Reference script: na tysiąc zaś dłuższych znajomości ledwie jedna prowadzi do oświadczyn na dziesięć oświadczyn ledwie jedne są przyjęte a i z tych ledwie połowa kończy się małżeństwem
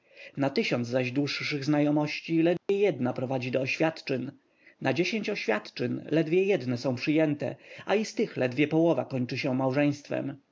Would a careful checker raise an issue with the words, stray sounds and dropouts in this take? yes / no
yes